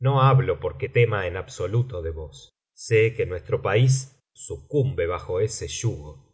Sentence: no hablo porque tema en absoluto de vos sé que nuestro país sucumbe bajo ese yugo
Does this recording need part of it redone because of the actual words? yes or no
no